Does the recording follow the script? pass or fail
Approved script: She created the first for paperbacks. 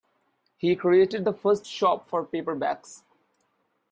fail